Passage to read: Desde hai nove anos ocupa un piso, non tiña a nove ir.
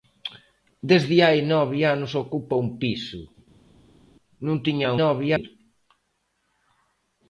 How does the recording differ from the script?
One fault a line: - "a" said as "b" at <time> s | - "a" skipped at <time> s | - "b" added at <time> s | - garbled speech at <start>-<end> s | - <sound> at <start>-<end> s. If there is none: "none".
none